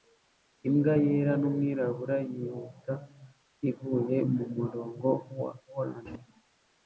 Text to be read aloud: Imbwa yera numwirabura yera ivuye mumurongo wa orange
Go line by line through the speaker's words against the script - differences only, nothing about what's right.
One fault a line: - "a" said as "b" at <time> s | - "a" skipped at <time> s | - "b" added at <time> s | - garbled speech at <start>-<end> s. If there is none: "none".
- "yera" said as "yihuta" at 2.3 s